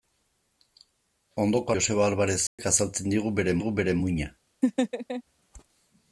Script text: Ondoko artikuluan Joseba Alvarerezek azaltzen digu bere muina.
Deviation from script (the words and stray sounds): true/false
true